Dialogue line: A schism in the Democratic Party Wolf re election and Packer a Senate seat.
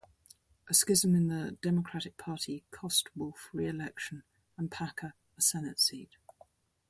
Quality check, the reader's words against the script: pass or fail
fail